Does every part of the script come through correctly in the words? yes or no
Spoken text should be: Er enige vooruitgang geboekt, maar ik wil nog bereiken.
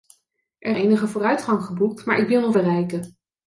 yes